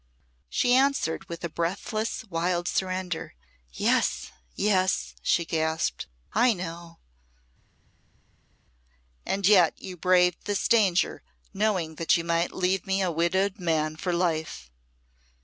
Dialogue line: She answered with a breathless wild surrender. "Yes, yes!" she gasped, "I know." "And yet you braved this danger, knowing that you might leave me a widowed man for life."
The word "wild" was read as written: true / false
true